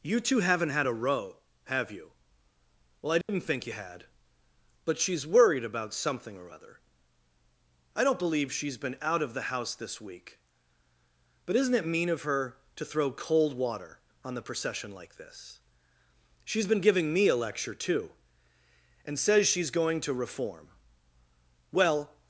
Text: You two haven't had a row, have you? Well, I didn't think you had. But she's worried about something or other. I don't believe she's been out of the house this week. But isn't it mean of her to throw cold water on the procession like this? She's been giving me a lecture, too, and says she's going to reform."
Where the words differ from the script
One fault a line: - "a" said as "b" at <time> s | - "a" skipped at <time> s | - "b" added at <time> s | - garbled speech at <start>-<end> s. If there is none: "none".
- "Well" added at 21.7 s